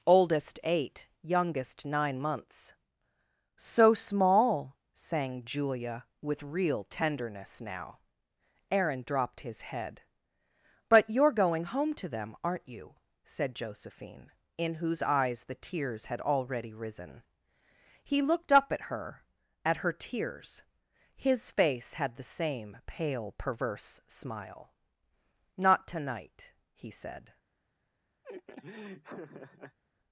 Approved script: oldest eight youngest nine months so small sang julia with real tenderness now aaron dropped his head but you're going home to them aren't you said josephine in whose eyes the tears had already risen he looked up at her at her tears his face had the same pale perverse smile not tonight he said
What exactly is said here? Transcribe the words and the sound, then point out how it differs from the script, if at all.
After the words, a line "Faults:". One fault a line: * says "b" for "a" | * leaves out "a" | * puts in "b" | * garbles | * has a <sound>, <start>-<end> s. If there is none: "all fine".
oldest eight youngest nine months so small sang julia with real tenderness now aaron dropped his head but you're going home to them aren't you said josephine in whose eyes the tears had already risen he looked up at her at her tears his face had the same pale perverse smile not tonight he said
Faults:
* has a laugh, 28.2-29.8 s